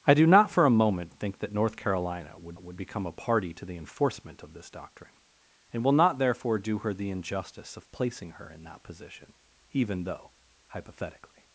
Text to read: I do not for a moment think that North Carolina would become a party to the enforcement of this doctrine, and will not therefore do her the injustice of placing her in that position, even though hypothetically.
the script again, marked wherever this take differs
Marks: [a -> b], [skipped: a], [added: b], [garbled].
I do not for a moment think that North Carolina would [added: would] become a party to the enforcement of this doctrine, and will not therefore do her the injustice of placing her in that position, even though hypothetically.